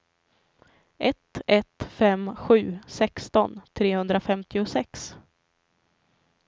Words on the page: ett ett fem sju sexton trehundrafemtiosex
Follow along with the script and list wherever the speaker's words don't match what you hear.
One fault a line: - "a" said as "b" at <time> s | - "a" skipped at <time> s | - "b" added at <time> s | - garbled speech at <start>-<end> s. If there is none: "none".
none